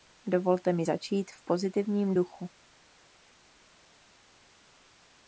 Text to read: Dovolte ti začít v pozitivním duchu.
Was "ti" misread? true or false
true